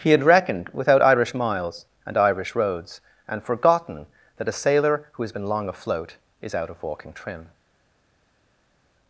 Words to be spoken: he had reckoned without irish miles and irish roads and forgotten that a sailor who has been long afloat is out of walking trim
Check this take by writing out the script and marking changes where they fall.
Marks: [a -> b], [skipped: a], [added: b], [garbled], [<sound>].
he had reckoned without irish miles and irish roads and forgotten that a sailor who has been long afloat is out of walking trim